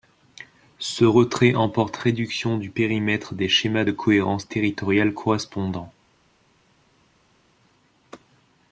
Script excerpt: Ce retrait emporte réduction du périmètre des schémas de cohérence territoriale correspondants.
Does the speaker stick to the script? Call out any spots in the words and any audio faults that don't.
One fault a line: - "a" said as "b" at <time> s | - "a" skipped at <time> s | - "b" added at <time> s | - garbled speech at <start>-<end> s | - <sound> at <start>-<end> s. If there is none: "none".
none